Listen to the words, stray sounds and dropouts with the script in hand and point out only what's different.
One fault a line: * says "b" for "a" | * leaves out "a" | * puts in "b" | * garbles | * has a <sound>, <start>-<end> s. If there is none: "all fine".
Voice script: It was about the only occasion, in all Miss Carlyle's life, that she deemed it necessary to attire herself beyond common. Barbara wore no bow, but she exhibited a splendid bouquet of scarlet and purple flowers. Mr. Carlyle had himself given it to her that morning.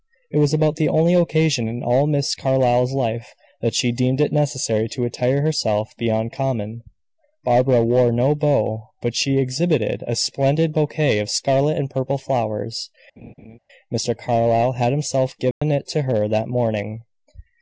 * has a laugh, 13.2-13.6 s
* has a dropout, 15.5-15.6 s